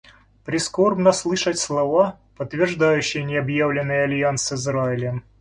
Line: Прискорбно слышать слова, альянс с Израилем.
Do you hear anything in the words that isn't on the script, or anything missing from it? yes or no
yes